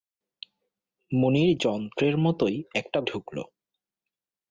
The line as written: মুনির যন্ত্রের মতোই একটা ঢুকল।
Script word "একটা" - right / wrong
right